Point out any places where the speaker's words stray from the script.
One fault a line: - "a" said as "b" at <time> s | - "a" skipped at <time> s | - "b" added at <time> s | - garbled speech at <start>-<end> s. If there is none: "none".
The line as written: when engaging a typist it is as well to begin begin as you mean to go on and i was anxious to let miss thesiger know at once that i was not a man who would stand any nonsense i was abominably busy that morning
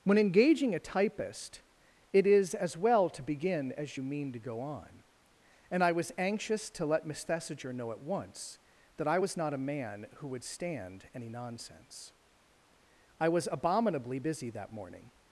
- "begin" skipped at 3.7 s